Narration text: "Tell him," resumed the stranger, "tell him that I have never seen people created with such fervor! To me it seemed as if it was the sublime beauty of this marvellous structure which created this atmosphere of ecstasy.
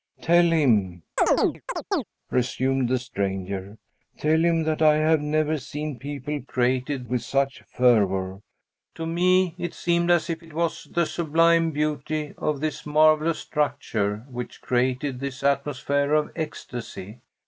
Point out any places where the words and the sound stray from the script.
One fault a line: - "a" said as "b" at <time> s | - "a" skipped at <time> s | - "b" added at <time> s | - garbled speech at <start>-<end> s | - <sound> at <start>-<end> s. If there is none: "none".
- chirp at 1.2-2.0 s